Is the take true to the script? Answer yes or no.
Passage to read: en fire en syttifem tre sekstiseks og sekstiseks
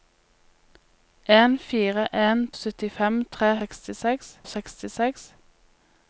yes